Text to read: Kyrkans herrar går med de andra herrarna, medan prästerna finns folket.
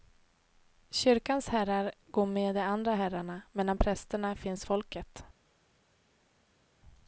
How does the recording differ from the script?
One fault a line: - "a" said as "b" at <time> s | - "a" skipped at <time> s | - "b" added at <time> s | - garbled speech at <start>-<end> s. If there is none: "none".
none